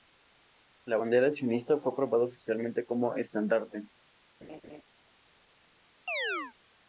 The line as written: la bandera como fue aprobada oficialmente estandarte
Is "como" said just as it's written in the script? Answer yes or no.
no